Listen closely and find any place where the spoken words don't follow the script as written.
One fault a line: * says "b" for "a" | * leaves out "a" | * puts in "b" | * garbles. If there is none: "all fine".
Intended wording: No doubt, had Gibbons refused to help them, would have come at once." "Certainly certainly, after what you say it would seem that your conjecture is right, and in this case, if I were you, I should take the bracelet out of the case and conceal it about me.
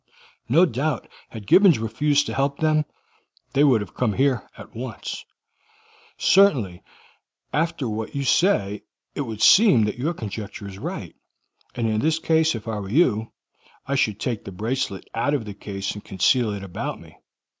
* puts in "they"
* puts in "here"
* leaves out "certainly"